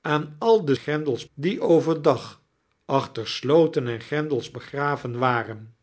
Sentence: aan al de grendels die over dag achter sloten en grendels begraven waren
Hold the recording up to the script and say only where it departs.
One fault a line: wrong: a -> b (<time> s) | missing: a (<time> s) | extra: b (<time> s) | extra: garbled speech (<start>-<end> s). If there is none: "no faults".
no faults